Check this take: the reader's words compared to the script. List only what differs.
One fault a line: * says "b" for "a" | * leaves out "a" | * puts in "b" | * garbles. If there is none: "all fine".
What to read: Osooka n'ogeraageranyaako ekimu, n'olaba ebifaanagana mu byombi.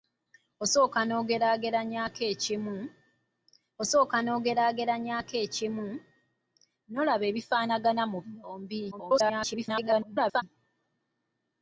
* puts in "osooka n'ogeraageranyaako ekimu"
* garbles